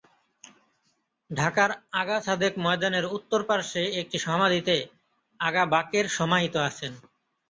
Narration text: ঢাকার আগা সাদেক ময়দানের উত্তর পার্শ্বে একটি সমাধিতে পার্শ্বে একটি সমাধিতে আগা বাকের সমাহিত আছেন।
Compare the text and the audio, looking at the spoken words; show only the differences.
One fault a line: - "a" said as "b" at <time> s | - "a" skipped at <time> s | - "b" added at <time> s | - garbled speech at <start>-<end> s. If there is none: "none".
- "পার্শ্বে একটি সমাধিতে" skipped at 4.8 s